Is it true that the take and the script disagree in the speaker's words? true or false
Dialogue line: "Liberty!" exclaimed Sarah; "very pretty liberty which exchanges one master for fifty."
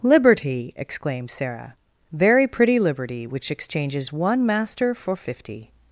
false